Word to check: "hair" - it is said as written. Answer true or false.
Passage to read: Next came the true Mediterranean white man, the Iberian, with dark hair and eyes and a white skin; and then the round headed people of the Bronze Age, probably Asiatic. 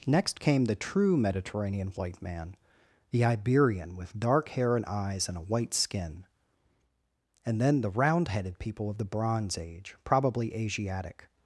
true